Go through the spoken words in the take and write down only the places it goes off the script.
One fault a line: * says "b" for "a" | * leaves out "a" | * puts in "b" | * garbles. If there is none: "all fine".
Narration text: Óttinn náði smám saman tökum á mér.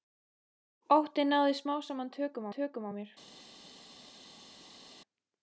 * puts in "tökum"